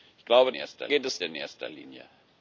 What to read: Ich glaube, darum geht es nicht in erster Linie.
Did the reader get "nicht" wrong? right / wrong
wrong